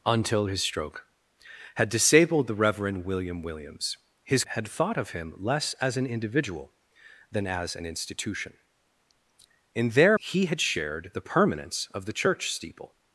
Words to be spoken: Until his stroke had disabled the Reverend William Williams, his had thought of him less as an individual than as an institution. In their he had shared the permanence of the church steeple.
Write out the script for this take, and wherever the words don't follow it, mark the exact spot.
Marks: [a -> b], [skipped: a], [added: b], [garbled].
Until his stroke had disabled the Reverend William Williams, his had thought of him less as an individual than as an institution. In their he had shared the permanence of the church steeple.